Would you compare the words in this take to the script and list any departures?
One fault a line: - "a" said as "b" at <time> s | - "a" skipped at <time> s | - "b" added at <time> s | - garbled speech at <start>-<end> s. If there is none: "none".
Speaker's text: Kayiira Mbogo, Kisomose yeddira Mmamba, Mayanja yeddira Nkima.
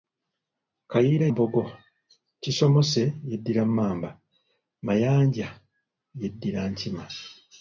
none